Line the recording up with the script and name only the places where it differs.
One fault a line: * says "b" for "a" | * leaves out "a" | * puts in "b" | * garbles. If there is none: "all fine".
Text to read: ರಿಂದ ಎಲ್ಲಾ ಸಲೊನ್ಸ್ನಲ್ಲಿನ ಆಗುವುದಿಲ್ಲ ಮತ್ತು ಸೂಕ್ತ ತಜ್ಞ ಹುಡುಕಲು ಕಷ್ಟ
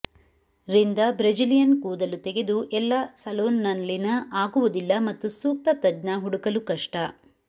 * puts in "ಬ್ರೆಜಿಲಿಯನ್ ಕೂದಲು ತೆಗೆದು"